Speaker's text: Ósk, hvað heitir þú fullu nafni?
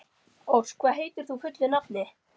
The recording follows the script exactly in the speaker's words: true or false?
true